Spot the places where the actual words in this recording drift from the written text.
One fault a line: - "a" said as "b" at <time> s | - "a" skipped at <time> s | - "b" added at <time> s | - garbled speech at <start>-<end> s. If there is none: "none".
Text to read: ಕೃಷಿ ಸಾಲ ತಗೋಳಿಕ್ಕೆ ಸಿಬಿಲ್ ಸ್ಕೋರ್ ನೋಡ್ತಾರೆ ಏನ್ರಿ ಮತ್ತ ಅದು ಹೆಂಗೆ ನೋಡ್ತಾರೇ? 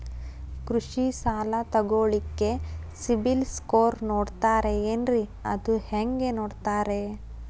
- "ಮತ್ತ" skipped at 5.2 s